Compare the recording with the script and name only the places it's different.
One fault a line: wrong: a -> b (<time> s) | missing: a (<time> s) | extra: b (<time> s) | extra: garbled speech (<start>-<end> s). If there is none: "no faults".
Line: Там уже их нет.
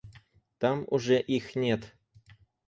no faults